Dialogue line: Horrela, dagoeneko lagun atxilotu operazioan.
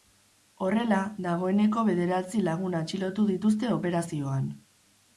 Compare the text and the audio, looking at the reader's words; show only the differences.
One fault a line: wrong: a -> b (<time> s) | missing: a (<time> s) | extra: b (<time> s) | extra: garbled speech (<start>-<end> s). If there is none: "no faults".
extra: bederatzi (1.9 s)
extra: dituzte (3.4 s)